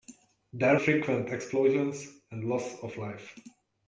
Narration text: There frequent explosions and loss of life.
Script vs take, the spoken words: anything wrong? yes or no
no